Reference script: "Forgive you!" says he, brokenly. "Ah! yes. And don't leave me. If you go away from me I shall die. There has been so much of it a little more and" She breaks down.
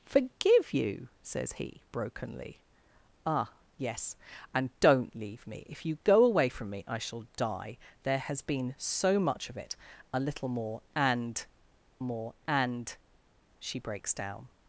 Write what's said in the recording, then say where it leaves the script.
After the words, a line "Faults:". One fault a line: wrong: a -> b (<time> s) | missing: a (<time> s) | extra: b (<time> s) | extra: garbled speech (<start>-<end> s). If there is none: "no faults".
"Forgive you!" says he, brokenly. "Ah! yes. And don't leave me. If you go away from me I shall die. There has been so much of it a little more and more and" She breaks down.
Faults:
extra: more and (12.0 s)